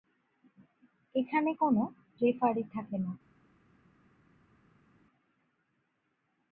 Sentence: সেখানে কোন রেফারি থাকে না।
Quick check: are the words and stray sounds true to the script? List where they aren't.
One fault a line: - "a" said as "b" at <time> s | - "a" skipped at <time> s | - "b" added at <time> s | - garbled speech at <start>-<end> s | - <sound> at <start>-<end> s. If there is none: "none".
- "সেখানে" said as "এখানে" at 1.1 s